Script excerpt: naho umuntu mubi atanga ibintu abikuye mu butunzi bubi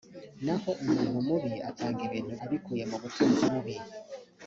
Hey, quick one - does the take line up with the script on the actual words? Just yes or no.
yes